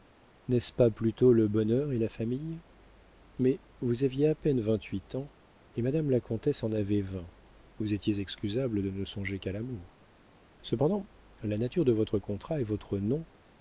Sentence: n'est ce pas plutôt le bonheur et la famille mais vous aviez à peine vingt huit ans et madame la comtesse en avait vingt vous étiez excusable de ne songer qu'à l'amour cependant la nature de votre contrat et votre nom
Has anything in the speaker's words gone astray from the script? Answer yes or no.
no